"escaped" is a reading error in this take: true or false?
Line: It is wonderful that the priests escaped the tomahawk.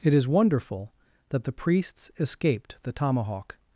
false